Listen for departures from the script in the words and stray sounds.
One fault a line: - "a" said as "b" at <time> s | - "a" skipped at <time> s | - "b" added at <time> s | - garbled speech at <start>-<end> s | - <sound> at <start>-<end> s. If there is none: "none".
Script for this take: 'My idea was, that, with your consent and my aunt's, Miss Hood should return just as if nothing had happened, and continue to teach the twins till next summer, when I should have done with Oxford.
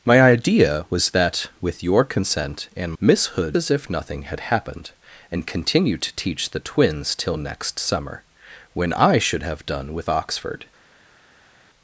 - "my aunt's" skipped at 2.9 s
- "should return just" skipped at 3.6 s